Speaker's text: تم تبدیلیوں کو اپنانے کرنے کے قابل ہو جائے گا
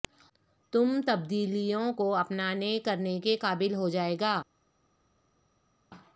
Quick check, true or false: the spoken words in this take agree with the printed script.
true